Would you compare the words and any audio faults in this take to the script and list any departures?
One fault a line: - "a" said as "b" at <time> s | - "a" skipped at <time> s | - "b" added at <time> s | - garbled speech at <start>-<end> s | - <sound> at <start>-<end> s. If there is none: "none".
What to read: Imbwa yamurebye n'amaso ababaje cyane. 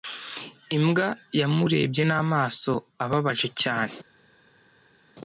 none